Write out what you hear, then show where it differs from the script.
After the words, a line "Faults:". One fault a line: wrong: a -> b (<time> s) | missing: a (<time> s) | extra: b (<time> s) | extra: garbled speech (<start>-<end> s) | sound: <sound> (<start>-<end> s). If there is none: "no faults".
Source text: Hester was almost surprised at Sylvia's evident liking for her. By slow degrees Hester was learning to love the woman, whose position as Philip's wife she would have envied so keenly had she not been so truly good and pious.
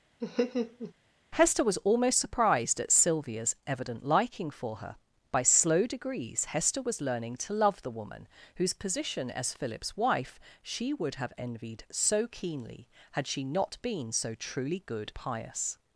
Hester was almost surprised at Sylvia's evident liking for her. By slow degrees Hester was learning to love the woman, whose position as Philip's wife she would have envied so keenly had she not been so truly good pious.
Faults:
sound: laugh (0.2-0.9 s)
missing: and (15.1 s)